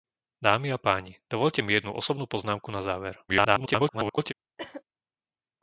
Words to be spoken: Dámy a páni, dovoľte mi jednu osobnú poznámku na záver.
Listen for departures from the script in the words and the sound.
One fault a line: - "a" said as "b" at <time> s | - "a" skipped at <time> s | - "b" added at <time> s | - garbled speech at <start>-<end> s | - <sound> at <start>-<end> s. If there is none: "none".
- garbled speech at 3.3-4.3 s
- cough at 4.6-4.8 s